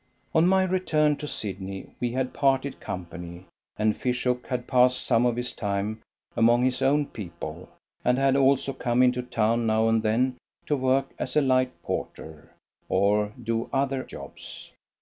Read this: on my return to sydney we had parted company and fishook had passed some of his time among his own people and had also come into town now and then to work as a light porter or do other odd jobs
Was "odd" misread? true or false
true